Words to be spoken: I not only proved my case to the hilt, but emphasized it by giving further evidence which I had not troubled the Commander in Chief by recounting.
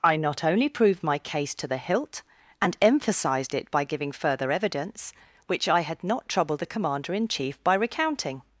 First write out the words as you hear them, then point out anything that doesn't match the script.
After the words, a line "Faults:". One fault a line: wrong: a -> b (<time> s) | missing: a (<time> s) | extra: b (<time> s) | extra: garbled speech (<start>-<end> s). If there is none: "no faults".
I not only proved my case to the hilt, and emphasized it by giving further evidence which I had not troubled the Commander in Chief by recounting.
Faults:
wrong: but -> and (2.6 s)